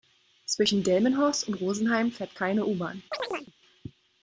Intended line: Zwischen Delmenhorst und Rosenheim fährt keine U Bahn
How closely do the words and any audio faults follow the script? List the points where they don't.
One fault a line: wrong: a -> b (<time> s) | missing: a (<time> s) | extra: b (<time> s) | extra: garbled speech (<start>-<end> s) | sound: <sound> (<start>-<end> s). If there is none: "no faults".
sound: chirp (3.1-3.5 s)